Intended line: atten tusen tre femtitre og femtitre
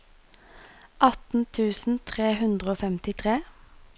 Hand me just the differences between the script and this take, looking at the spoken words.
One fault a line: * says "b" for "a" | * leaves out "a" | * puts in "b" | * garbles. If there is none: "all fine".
* says "hundre" for "femtitre"